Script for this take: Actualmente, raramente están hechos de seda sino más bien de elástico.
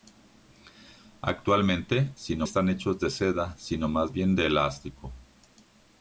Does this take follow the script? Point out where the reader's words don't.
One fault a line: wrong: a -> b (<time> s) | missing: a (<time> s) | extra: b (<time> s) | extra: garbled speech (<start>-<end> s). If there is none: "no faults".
wrong: raramente -> sino (2.2 s)